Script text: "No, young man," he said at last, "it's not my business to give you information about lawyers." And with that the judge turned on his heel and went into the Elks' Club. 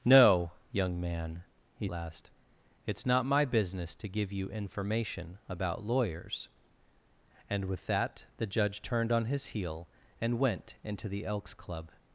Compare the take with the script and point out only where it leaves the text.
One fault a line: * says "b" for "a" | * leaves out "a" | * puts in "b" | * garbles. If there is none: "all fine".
* leaves out "said at"